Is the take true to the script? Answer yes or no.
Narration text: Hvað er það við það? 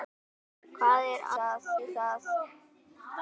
yes